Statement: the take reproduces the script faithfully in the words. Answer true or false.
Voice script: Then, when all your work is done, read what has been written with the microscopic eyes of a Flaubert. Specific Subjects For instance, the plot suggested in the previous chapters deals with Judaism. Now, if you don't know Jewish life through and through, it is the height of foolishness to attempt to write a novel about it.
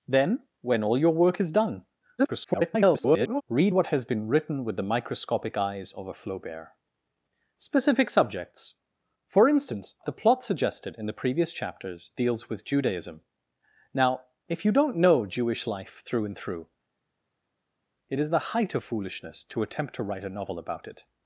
false